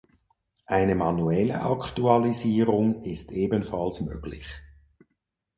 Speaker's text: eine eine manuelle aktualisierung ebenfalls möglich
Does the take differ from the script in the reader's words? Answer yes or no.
yes